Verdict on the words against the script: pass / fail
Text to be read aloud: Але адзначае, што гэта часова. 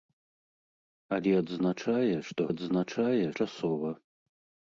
fail